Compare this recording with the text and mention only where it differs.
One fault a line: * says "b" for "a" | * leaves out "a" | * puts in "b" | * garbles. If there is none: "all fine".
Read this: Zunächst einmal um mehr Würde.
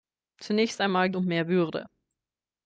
all fine